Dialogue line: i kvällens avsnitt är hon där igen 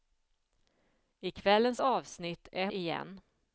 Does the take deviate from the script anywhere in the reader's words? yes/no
yes